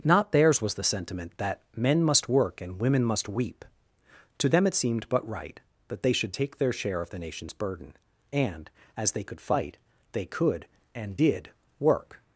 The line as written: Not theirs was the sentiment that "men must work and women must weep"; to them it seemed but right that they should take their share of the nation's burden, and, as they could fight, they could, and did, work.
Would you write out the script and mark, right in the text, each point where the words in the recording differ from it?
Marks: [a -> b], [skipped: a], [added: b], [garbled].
Not theirs was the sentiment that "men must work and women must weep"; to them it seemed but right that they should take their share of the nation's burden, and, as they could fight, they could, and did, work.